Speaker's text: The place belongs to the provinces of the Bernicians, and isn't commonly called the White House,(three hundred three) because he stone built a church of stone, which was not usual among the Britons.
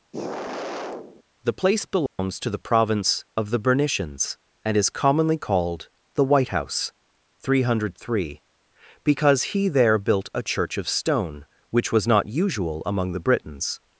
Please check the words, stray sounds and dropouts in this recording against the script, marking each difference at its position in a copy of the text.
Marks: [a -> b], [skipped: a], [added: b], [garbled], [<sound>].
[sigh] The place belongs [dropout] to the [provinces -> province] of the Bernicians, and [isn't -> is] commonly called the White House,(three hundred three) because he [stone -> there] built a church of stone, which was not usual among the Britons.